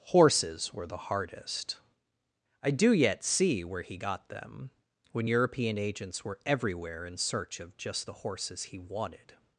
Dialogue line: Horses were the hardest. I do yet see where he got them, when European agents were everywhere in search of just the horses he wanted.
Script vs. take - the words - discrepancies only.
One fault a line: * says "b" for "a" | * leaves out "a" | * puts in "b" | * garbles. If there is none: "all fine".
all fine